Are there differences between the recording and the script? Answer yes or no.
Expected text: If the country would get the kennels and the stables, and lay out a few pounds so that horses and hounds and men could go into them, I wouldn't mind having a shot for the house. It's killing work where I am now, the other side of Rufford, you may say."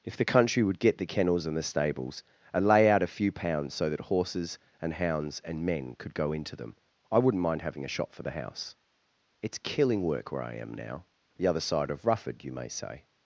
yes